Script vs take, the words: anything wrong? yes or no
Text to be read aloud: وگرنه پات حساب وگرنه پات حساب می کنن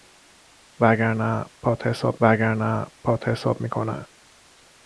no